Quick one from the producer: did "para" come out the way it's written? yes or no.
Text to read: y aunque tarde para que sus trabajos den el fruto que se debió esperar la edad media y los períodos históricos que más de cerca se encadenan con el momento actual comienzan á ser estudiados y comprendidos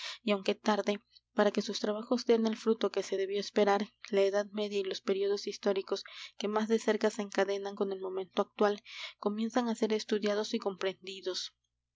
yes